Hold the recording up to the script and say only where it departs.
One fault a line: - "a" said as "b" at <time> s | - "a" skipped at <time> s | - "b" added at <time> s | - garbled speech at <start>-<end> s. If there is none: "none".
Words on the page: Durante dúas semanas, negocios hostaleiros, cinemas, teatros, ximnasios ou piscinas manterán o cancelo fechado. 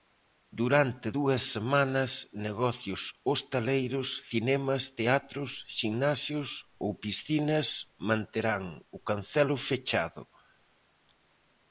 none